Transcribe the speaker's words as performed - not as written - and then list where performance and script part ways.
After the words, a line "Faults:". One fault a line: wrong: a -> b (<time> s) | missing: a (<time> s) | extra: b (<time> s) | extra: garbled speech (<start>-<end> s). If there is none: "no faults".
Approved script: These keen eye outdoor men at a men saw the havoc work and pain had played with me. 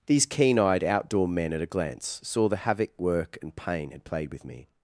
These keen eyed outdoor men at a glance saw the havoc work and pain had played with me.
Faults:
wrong: eye -> eyed (0.6 s)
wrong: men -> glance (1.7 s)